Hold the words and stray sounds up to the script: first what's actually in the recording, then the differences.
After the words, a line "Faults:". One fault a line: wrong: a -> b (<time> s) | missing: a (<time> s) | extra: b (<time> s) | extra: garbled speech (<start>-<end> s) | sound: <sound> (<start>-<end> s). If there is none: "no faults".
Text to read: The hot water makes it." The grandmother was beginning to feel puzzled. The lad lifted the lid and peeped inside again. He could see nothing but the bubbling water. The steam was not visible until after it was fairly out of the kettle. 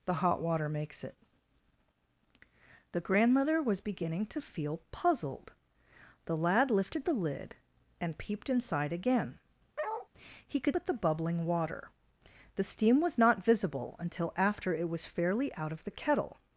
The hot water makes it." The grandmother was beginning to feel puzzled. The lad lifted the lid and peeped inside again. He could but the bubbling water. The steam was not visible until after it was fairly out of the kettle.
Faults:
sound: bark (9.8-10.1 s)
missing: see nothing (10.8 s)